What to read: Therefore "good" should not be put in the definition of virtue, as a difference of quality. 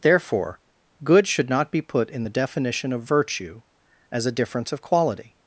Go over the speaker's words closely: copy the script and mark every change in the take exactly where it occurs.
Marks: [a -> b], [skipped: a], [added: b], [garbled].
Therefore "good" should not be put in the definition of virtue, as a difference of quality.